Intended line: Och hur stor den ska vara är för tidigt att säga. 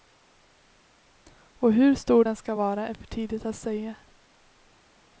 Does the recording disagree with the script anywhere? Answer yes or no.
no